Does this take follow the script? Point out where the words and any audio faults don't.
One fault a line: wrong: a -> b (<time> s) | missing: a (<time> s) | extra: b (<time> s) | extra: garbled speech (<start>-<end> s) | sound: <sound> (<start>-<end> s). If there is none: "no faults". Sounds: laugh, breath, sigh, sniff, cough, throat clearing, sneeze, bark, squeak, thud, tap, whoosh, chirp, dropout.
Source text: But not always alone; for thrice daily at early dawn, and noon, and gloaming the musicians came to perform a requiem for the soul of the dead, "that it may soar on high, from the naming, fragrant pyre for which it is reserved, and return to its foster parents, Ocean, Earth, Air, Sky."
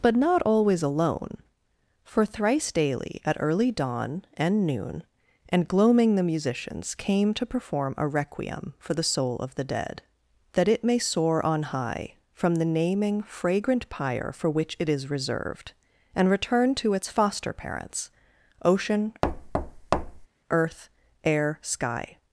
sound: thud (19.2-20.3 s)